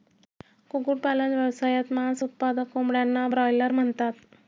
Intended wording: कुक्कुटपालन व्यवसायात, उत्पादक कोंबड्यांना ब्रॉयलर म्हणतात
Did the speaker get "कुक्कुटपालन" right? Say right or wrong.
right